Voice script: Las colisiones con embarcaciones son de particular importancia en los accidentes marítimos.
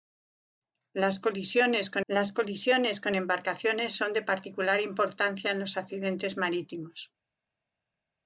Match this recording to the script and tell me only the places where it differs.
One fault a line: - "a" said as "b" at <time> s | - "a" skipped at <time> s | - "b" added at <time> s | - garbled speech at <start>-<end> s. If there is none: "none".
- "las colisiones con" added at 2.1 s